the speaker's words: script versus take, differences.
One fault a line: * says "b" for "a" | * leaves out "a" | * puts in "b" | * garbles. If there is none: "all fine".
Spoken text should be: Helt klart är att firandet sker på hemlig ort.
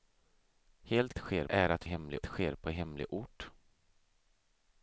* says "sker" for "klart"
* says "hemlig" for "firandet"